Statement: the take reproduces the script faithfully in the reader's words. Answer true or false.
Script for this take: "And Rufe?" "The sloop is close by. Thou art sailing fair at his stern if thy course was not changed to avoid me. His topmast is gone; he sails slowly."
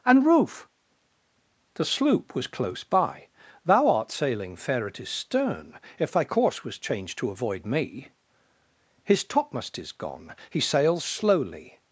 false